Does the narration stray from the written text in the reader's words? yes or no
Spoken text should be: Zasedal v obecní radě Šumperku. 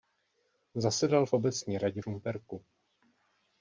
no